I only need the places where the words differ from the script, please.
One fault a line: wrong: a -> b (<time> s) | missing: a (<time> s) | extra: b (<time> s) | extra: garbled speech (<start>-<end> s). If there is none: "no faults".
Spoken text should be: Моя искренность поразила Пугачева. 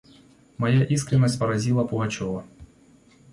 no faults